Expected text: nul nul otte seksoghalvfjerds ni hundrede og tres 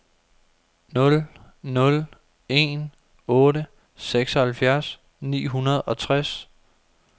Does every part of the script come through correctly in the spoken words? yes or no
no